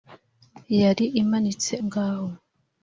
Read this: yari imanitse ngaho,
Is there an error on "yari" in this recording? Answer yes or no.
no